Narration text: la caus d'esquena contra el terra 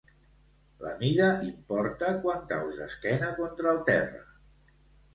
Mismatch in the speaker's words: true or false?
true